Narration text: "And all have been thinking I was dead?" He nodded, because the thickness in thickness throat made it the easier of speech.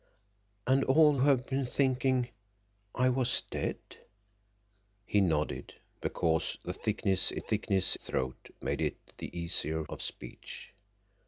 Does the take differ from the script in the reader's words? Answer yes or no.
no